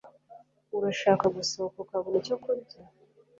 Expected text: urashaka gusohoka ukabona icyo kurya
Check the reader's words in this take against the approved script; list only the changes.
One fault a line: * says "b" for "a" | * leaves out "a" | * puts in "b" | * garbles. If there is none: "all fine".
all fine